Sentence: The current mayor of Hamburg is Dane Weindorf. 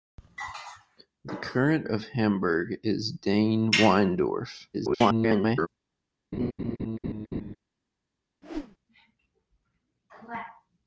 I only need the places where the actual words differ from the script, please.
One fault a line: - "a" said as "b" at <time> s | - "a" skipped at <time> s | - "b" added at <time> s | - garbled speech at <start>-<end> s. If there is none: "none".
- "mayor" skipped at 1.9 s
- garbled speech at 4.7-5.7 s